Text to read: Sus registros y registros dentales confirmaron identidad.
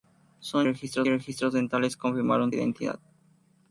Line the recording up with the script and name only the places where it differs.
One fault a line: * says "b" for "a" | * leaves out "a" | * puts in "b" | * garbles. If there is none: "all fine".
all fine